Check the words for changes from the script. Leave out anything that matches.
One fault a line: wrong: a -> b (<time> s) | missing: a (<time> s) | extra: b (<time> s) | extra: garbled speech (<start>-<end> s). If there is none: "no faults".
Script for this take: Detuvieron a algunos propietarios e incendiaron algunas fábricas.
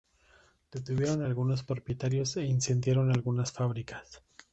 no faults